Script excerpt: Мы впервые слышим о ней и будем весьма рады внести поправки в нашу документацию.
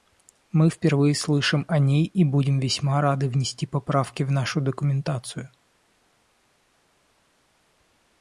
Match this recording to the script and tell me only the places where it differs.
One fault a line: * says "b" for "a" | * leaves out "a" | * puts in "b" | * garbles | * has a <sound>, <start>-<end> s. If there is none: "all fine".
all fine